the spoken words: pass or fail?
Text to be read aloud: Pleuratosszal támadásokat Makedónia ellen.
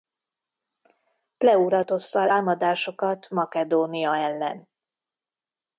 pass